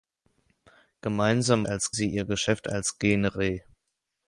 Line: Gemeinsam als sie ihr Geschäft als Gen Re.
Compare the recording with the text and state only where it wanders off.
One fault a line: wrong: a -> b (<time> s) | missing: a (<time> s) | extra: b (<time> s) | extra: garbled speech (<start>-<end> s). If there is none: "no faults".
no faults